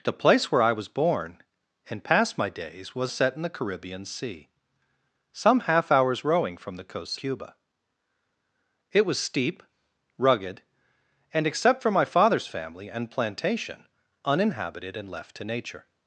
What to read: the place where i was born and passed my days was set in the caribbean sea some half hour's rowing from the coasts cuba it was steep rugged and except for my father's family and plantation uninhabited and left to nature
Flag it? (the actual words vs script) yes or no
no